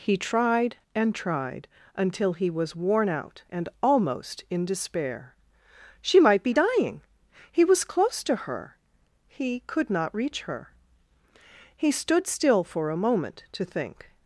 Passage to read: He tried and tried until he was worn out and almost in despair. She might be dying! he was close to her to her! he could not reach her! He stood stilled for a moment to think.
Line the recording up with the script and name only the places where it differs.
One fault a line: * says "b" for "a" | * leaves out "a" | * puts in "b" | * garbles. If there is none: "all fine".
* leaves out "to her"
* says "still" for "stilled"